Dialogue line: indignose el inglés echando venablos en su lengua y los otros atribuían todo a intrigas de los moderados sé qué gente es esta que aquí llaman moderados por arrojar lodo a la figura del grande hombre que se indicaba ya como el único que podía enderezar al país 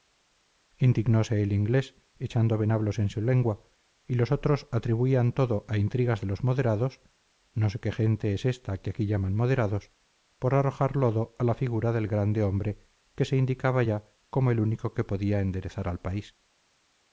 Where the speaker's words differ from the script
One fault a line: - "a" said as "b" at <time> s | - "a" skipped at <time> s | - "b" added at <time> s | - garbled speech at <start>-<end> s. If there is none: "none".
- "no" added at 7.5 s